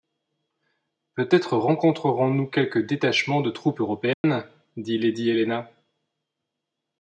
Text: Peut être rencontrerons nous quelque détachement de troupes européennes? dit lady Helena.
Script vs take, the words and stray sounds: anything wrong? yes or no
yes